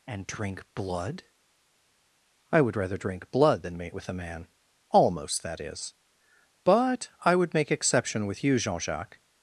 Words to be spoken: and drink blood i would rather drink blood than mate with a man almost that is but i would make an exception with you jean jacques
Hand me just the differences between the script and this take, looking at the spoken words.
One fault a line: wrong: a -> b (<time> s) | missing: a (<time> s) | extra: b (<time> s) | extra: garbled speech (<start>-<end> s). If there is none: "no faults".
missing: an (7.7 s)